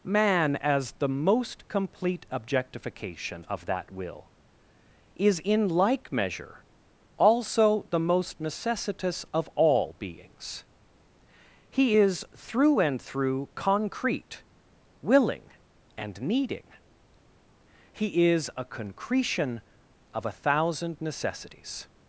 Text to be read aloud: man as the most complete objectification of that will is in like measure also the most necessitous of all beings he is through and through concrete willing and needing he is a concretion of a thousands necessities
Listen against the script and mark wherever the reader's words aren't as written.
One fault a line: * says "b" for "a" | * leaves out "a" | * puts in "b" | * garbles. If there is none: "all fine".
* says "thousand" for "thousands"